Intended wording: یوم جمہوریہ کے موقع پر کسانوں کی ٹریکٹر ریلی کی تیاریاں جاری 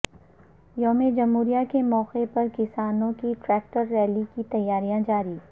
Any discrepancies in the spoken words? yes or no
no